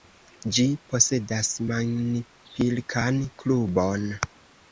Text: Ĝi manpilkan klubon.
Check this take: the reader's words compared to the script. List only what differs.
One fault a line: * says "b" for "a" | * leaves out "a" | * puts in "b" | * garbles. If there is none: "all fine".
* puts in "posedas"